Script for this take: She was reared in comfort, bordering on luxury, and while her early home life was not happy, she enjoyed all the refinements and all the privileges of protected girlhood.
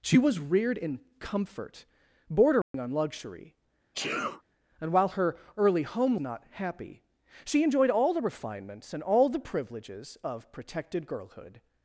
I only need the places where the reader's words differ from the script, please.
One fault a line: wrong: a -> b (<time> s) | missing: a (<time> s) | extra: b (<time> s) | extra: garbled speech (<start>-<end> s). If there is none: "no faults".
missing: life was (6.2 s)